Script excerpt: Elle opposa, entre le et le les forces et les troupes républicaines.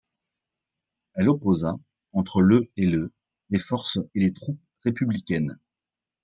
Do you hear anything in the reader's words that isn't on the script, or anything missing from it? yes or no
no